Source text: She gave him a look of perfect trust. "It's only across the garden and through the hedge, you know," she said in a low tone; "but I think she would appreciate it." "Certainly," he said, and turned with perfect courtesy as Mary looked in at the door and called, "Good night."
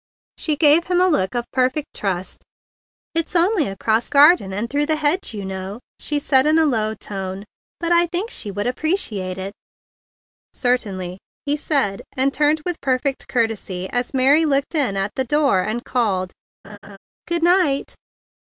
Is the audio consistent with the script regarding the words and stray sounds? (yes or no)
no